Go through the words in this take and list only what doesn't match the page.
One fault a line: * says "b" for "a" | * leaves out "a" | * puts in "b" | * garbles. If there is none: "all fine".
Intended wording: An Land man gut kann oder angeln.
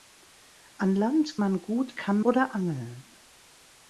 all fine